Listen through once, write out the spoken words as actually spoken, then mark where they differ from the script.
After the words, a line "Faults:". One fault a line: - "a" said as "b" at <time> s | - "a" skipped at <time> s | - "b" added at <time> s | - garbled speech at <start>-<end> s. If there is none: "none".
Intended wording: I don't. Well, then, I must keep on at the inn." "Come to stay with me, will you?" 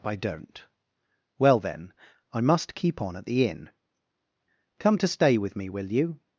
I don't. Well, then, I must keep on at the inn." "Come to stay with me, will you?"
Faults:
none